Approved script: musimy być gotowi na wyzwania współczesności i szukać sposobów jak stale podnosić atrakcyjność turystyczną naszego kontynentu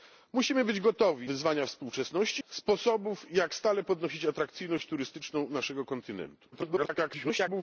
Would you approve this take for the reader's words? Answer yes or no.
no